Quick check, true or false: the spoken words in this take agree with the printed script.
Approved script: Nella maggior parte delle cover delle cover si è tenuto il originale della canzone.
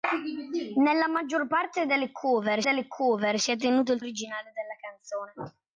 true